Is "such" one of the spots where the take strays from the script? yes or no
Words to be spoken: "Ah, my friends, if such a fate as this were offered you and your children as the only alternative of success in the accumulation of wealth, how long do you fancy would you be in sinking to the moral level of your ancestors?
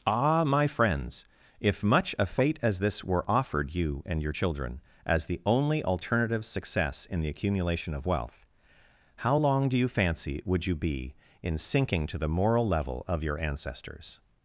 yes